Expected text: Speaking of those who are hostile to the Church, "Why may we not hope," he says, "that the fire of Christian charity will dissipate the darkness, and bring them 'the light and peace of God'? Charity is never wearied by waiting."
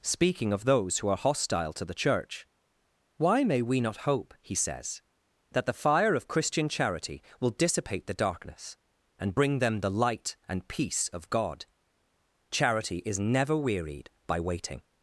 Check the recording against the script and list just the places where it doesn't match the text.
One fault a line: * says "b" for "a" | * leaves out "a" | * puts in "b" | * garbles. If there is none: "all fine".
all fine